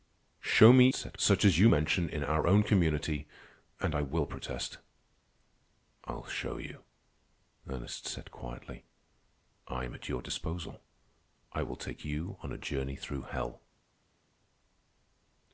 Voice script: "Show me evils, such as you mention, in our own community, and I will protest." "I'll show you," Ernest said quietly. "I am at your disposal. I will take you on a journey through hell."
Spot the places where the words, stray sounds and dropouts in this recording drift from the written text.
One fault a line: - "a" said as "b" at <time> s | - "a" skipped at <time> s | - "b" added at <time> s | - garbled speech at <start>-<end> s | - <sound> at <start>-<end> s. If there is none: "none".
- "evils" said as "said" at 0.9 s